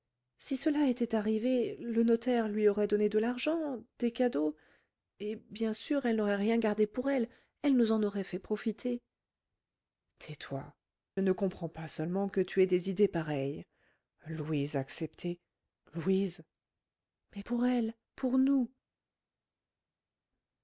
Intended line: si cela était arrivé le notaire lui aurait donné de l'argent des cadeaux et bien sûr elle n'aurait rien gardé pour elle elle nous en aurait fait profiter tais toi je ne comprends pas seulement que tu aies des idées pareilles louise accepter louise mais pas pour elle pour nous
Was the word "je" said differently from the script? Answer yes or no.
yes